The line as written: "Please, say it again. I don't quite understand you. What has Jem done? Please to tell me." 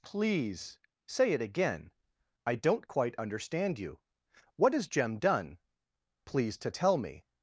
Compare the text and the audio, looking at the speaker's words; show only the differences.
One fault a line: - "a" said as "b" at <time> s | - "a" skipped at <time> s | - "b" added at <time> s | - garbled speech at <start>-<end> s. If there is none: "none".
none